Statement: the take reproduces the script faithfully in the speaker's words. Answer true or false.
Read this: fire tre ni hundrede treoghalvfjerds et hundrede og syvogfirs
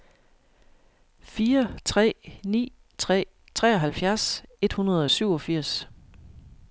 false